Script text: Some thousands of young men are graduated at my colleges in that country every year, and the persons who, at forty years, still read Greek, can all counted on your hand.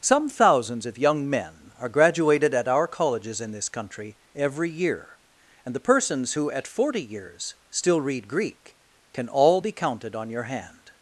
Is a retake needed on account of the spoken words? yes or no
yes